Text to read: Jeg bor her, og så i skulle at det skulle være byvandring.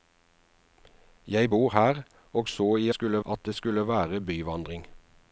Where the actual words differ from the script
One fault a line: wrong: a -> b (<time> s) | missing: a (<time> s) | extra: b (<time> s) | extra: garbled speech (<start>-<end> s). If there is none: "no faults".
no faults